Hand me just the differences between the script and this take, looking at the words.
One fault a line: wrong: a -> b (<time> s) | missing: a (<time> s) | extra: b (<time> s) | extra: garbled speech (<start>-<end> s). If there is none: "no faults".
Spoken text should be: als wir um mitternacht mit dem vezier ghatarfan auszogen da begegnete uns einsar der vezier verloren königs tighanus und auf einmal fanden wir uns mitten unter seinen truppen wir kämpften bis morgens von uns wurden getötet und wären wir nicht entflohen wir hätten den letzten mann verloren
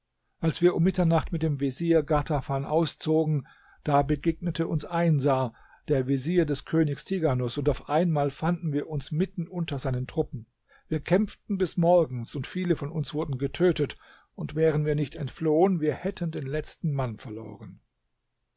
wrong: verloren -> des (6.5 s)
extra: und viele (12.3 s)